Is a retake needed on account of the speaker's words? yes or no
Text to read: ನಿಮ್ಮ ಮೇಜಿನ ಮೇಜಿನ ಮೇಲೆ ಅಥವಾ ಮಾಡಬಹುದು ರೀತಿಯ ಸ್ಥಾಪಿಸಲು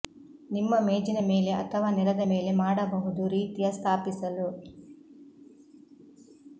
yes